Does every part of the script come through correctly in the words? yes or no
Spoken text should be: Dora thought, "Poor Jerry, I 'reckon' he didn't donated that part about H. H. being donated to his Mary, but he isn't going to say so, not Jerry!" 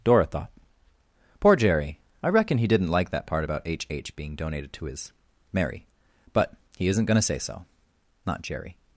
no